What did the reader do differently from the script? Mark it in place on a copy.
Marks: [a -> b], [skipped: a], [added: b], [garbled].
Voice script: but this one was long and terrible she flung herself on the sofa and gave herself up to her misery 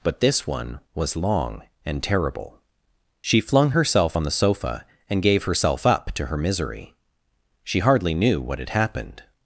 but this one was long and terrible she flung herself on the sofa and gave herself up to her misery [added: she hardly knew what had happened]